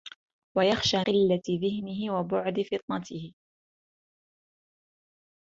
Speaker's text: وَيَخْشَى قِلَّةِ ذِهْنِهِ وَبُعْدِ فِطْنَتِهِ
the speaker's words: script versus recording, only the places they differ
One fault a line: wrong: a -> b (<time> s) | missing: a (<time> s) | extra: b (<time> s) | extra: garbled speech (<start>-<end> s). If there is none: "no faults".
no faults